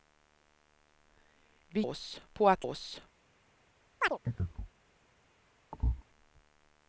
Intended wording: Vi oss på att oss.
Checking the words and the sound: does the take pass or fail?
fail